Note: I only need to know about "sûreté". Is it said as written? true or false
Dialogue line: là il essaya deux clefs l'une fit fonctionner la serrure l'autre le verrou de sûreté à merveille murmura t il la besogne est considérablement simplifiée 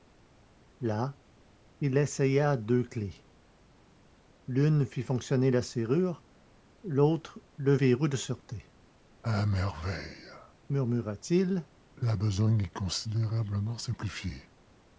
true